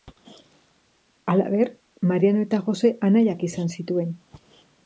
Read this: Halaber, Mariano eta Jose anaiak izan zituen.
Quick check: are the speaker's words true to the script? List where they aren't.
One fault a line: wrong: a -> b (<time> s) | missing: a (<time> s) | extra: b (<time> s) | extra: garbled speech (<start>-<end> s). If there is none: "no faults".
no faults